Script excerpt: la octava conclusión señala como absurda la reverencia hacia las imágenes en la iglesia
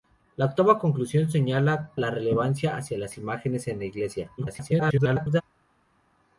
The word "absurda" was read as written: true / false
false